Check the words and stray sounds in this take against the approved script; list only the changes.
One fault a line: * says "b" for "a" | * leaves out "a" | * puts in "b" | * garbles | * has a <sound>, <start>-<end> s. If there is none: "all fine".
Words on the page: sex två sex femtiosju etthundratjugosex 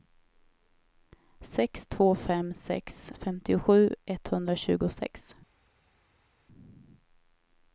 * puts in "fem"